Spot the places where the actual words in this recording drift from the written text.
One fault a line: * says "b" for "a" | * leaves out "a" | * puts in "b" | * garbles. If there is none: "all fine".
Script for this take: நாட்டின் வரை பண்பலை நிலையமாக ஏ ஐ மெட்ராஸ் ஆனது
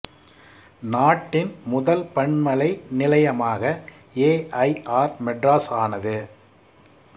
* says "முதல்" for "வரை"
* puts in "ஆர்"